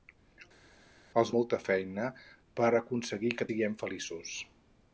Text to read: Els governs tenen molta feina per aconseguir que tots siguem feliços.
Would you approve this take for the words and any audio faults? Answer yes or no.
no